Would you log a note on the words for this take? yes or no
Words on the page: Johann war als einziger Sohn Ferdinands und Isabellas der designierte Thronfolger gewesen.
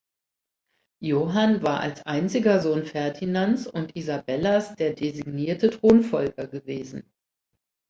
no